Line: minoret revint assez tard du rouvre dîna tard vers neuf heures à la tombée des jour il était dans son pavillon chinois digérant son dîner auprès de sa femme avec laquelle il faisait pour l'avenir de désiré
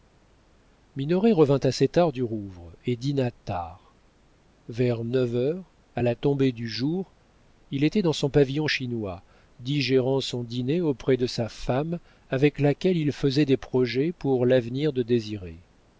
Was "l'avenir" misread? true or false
false